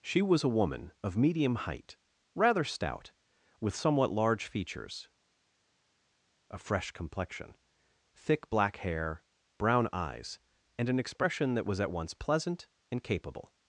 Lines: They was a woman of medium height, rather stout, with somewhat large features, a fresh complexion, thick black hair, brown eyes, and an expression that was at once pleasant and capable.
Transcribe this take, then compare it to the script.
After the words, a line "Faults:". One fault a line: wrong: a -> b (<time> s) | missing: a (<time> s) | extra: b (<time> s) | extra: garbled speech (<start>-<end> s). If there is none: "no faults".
She was a woman of medium height, rather stout, with somewhat large features, a fresh complexion, thick black hair, brown eyes, and an expression that was at once pleasant and capable.
Faults:
wrong: They -> She (0.0 s)